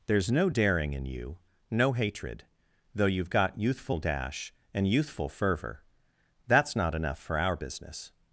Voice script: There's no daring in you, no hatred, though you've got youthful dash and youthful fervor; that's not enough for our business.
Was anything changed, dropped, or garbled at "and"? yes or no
no